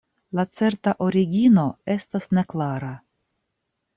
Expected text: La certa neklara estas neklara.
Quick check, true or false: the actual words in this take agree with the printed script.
false